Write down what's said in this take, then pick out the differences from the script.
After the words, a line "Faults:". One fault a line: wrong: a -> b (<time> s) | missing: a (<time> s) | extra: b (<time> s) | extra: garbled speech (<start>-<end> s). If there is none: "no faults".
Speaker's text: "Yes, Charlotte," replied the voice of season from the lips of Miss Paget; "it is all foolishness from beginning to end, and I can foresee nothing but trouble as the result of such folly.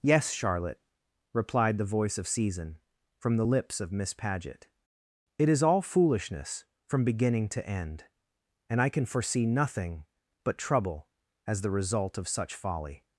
"Yes, Charlotte," replied the voice of season from the lips of Miss Paget; "it is all foolishness from beginning to end, and I can foresee nothing but trouble as the result of such folly.
Faults:
no faults